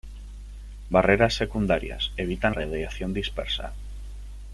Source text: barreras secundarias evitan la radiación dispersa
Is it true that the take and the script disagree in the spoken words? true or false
true